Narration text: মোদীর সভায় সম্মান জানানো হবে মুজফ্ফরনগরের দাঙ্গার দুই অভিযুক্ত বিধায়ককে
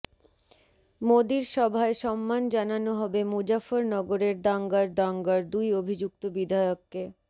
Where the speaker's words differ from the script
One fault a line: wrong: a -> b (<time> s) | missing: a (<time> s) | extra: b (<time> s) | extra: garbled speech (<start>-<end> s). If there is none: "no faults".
extra: দাঙ্গার (4.9 s)